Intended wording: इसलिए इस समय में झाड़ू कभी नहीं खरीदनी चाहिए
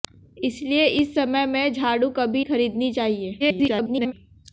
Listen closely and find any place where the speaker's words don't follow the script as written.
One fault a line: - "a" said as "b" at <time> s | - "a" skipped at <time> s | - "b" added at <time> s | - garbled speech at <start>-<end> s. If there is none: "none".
- "नहीं" skipped at 2.4 s
- garbled speech at 3.4-4.1 s